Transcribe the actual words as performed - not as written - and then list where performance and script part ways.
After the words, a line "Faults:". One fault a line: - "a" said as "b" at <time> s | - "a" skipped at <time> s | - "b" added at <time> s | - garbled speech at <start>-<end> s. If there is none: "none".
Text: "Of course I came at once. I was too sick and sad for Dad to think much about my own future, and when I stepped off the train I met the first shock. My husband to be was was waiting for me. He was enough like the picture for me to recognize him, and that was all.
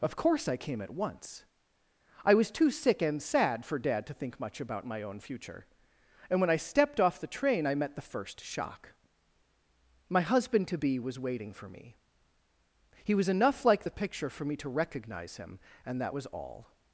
"Of course I came at once. I was too sick and sad for Dad to think much about my own future, and when I stepped off the train I met the first shock. My husband to be was waiting for me. He was enough like the picture for me to recognize him, and that was all.
Faults:
- "was" skipped at 11.2 s